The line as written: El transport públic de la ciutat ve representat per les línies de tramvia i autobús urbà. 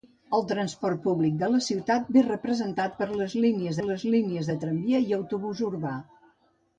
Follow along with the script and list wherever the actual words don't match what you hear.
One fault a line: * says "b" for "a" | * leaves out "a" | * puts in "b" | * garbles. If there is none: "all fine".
* puts in "les línies"